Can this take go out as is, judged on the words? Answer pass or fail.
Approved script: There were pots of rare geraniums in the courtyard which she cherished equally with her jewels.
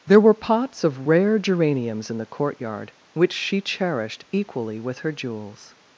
pass